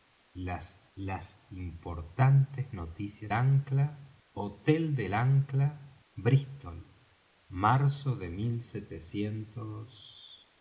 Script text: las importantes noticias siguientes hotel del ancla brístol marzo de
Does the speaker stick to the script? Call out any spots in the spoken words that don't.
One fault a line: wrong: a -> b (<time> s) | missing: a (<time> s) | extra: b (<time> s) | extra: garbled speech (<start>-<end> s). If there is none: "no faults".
extra: las (0.9 s)
wrong: siguientes -> ancla (3.3 s)